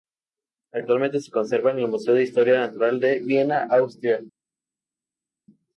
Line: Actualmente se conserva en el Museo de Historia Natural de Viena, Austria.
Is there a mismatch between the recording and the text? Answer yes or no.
no